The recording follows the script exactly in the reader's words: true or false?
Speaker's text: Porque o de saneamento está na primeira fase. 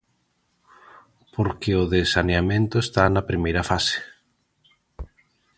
true